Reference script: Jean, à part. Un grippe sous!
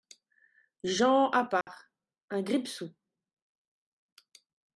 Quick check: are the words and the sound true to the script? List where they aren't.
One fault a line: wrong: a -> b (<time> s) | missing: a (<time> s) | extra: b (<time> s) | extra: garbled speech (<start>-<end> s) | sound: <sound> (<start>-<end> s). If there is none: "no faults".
sound: dropout (1.6-1.7 s)